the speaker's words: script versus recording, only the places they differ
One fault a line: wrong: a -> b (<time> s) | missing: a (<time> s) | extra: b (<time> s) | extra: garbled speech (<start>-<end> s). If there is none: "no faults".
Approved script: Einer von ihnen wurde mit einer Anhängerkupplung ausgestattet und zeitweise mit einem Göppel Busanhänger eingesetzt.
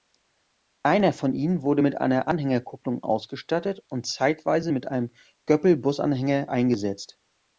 no faults